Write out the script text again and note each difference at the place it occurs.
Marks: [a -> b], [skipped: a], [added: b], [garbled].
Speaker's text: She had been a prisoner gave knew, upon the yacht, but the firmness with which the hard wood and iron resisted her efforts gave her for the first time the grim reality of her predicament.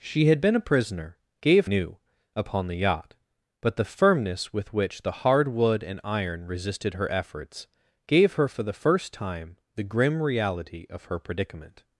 She had been a prisoner gave knew, upon the yacht, but the firmness with which the hard wood and iron resisted her efforts gave her for the first time the grim reality of her predicament.